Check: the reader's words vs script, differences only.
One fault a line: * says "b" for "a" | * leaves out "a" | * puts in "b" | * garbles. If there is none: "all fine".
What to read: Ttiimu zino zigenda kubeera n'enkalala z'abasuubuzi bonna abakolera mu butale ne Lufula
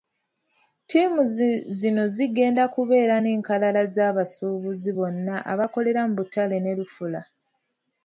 all fine